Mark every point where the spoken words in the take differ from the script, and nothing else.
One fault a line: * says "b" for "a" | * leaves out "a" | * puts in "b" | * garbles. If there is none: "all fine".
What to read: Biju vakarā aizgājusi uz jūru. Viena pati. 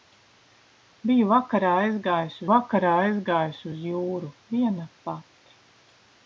* puts in "vakarā aizgājusi"